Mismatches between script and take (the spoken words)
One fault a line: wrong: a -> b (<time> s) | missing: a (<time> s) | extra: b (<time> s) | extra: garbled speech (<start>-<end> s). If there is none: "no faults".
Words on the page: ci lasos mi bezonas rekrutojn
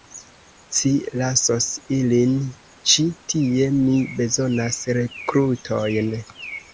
extra: ilin ĉi tie (2.0 s)